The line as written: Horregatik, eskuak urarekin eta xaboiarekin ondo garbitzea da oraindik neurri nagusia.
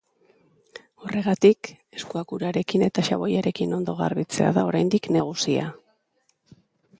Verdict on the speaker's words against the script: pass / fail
fail